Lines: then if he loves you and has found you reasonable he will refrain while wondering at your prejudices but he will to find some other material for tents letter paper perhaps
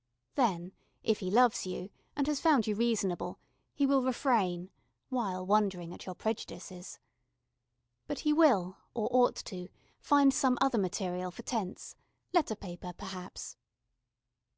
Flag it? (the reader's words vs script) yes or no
yes